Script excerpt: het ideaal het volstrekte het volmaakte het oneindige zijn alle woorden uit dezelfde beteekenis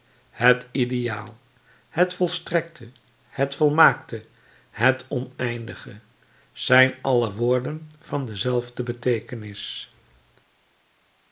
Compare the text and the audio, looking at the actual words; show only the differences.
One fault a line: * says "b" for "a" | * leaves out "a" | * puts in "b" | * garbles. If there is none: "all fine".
* says "van" for "uit"